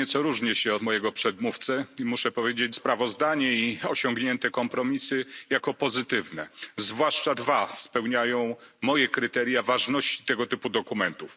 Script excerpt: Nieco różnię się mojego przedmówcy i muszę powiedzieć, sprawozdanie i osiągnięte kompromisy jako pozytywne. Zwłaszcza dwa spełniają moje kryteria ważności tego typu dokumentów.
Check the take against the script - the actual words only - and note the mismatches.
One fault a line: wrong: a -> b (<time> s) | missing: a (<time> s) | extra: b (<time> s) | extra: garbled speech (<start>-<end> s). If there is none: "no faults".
no faults